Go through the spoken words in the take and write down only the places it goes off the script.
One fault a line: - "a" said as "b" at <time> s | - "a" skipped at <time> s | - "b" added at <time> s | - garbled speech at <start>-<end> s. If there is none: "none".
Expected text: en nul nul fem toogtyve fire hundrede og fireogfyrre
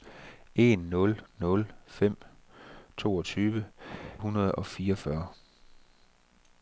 - "fire" skipped at 3.6 s